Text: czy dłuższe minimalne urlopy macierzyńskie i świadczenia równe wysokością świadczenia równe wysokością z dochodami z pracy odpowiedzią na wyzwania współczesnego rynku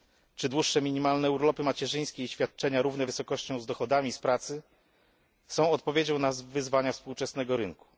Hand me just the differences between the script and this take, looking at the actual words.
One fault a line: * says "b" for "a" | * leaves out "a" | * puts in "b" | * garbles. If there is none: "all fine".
* leaves out "świadczenia równe wysokością"
* puts in "są"